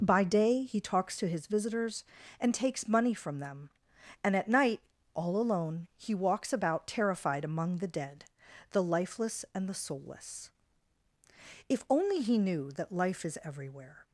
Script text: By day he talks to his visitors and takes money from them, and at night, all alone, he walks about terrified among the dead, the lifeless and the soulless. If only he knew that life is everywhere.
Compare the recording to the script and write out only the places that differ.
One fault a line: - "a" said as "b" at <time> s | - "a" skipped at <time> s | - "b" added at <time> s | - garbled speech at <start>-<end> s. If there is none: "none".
none